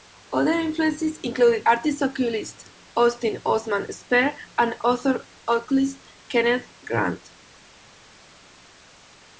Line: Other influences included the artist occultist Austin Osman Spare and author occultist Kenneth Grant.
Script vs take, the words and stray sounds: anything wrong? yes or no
yes